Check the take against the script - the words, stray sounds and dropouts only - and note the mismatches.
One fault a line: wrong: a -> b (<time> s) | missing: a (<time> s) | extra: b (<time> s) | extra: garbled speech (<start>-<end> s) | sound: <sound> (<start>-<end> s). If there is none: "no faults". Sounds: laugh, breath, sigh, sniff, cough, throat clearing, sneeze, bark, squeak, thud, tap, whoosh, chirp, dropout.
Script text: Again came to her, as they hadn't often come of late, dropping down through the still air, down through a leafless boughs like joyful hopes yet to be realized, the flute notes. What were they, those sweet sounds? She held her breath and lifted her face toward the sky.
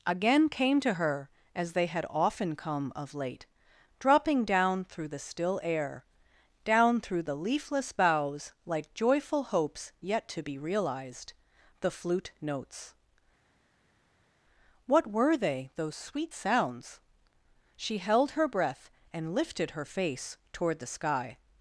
wrong: hadn't -> had (1.9 s)
wrong: a -> the (7.2 s)